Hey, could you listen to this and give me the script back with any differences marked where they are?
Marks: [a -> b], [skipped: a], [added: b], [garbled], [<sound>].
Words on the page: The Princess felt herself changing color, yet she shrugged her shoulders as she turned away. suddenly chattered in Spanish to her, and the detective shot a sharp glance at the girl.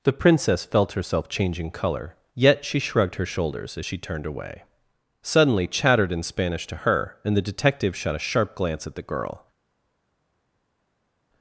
The Princess felt herself changing color, yet she shrugged her shoulders as she turned away. suddenly chattered in Spanish to her, and the detective shot a sharp glance at the girl.